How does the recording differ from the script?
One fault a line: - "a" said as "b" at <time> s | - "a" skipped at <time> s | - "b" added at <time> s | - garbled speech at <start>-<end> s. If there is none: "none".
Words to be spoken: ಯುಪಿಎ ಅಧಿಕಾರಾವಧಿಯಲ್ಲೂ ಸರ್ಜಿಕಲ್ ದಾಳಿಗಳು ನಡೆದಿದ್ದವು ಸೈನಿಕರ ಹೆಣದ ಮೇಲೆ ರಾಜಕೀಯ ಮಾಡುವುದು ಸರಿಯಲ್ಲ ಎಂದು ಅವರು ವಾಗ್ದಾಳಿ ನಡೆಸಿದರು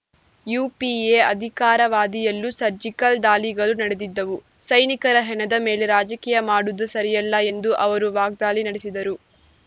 none